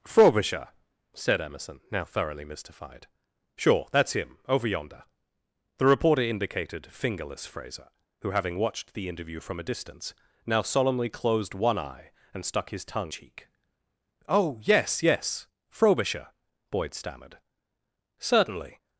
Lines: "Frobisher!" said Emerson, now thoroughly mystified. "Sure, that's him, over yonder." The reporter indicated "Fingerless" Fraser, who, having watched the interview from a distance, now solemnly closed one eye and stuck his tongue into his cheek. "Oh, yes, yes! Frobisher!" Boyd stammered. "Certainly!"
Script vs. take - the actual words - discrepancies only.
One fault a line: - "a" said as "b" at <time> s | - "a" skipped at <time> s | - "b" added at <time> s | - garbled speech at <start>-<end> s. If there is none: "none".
- "into his" skipped at 13.1 s